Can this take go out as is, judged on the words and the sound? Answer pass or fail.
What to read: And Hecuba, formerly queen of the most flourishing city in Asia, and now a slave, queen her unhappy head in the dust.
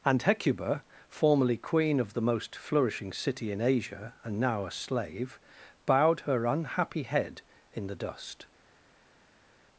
fail